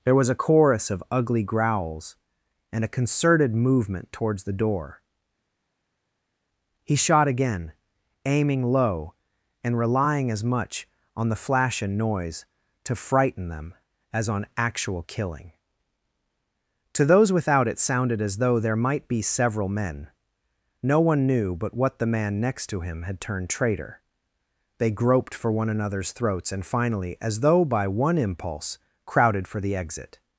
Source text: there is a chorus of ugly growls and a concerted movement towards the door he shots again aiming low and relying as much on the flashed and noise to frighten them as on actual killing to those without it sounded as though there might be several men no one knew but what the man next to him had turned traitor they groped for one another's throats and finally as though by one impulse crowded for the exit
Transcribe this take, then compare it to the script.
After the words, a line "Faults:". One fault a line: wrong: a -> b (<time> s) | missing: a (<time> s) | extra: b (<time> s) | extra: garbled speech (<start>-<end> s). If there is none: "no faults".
there was a chorus of ugly growls and a concerted movement towards the door he shot again aiming low and relying as much on the flash and noise to frighten them as on actual killing to those without it sounded as though there might be several men no one knew but what the man next to him had turned traitor they groped for one another's throats and finally as though by one impulse crowded for the exit
Faults:
wrong: is -> was (0.1 s)
wrong: shots -> shot (6.9 s)
wrong: flashed -> flash (11.3 s)